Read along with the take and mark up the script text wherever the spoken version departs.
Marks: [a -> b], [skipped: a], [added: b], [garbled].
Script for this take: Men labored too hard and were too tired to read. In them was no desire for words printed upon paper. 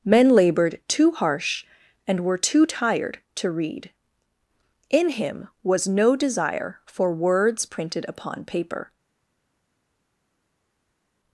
Men labored too [hard -> harsh] and were too tired to read. In [them -> him] was no desire for words printed upon paper.